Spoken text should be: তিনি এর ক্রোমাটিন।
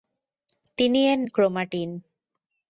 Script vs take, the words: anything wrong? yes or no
no